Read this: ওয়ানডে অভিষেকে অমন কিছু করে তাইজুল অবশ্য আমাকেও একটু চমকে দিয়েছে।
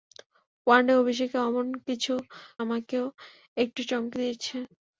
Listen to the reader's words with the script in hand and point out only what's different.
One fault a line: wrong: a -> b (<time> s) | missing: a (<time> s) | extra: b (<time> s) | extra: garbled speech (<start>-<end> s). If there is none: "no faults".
missing: করে তাইজুল অবশ্য (2.1 s)